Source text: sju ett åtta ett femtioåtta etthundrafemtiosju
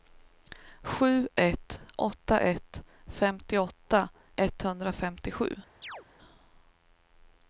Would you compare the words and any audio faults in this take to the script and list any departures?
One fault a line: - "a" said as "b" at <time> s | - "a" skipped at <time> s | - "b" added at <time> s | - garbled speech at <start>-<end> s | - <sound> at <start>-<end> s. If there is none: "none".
- chirp at 5.8-6.1 s